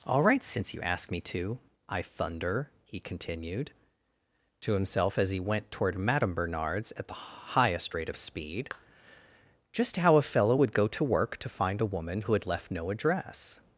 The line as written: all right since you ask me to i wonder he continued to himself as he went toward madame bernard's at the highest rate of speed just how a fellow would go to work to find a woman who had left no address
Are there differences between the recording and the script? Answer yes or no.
yes